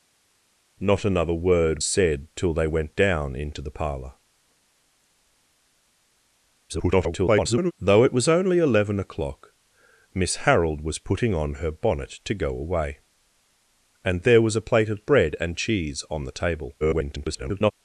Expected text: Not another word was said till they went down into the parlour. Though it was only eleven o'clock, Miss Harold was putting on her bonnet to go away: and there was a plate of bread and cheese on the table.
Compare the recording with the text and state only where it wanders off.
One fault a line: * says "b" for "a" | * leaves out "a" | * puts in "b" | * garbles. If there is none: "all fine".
* leaves out "was"
* garbles
* garbles